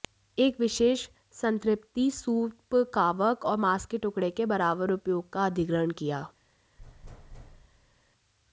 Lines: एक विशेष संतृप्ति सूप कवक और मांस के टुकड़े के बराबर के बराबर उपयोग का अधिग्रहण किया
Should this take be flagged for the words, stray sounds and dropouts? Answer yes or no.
yes